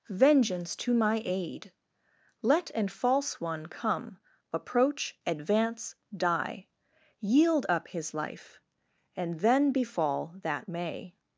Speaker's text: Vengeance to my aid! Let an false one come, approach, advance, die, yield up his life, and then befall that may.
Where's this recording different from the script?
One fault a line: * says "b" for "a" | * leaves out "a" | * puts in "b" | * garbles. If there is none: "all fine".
all fine